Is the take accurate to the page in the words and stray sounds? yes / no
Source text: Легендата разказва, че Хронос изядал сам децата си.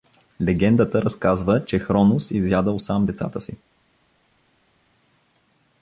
yes